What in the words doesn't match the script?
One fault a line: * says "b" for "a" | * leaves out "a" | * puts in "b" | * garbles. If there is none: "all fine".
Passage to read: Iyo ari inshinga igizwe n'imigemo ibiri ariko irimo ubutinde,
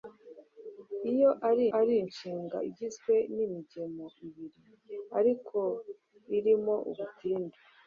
* puts in "ari"